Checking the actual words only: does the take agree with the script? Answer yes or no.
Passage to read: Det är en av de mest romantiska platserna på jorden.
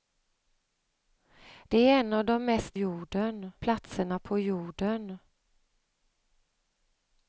no